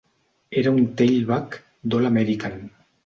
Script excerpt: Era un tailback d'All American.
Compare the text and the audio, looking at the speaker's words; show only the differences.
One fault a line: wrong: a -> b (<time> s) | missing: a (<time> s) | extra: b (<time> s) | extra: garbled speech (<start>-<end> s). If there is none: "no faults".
no faults